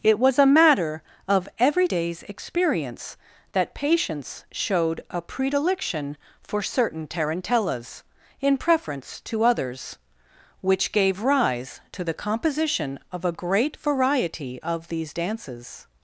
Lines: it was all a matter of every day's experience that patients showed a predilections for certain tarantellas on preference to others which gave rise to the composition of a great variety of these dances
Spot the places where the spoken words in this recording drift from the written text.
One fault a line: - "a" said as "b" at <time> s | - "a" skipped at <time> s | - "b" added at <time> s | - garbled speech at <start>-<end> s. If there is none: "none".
- "all" skipped at 0.4 s
- "predilections" said as "predilection" at 5.2 s
- "on" said as "in" at 8.4 s